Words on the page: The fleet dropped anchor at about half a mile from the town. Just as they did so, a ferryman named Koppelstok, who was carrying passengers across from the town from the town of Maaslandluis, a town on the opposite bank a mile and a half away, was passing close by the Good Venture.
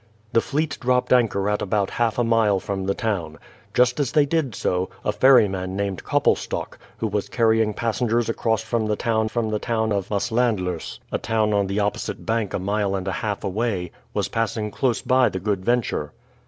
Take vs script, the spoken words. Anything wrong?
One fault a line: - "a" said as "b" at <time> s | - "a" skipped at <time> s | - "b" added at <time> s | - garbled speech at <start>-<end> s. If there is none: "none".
none